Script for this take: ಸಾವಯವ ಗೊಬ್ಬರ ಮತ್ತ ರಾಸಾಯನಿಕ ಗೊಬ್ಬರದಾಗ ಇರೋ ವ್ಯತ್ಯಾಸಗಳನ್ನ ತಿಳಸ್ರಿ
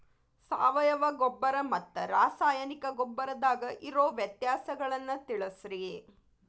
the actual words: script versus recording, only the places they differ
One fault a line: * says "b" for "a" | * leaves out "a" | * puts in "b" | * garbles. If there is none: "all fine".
all fine